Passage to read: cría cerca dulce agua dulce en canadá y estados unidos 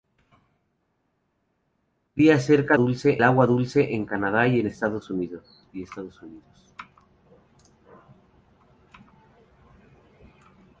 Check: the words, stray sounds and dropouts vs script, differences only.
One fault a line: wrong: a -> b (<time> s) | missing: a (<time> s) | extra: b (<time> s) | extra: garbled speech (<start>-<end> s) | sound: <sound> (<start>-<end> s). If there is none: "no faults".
no faults